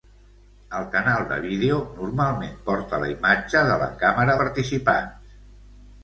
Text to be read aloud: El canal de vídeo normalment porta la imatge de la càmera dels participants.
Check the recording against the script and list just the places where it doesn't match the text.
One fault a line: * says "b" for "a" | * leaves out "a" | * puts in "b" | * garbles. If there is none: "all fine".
* leaves out "dels"